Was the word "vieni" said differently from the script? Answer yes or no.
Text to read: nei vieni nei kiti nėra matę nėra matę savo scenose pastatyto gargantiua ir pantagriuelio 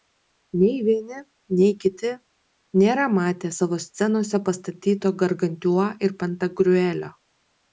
no